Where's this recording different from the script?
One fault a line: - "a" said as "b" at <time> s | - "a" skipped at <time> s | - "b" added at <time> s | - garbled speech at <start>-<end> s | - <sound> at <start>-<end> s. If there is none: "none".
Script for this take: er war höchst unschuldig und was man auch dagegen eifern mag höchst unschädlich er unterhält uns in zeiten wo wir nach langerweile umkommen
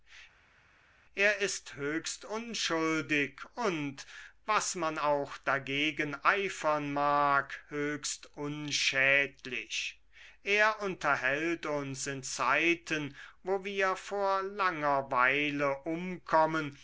- "war" said as "ist" at 1.4 s
- "nach" said as "vor" at 14.0 s